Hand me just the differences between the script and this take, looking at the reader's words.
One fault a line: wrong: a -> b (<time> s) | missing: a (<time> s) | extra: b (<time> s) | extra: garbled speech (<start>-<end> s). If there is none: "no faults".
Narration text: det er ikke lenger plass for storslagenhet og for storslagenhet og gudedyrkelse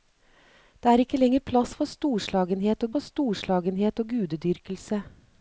no faults